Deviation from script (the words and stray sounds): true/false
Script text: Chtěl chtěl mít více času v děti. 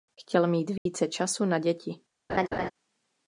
true